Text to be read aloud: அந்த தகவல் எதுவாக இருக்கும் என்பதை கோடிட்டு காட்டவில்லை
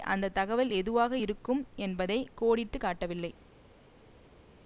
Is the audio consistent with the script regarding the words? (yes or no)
yes